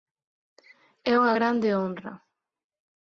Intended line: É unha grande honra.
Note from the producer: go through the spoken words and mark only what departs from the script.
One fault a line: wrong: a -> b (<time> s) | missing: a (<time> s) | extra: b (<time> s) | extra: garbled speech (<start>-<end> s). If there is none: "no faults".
no faults